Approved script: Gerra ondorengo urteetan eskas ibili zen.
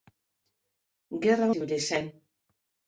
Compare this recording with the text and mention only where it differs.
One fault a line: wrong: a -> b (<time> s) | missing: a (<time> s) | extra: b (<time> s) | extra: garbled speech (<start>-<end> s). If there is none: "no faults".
missing: ondorengo urteetan eskas (1.5 s)